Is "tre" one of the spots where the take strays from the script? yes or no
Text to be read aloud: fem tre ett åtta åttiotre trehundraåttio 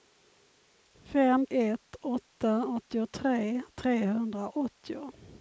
yes